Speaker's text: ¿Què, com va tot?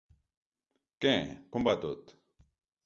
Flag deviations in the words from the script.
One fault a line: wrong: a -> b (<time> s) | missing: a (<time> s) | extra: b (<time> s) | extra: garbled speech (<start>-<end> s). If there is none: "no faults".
no faults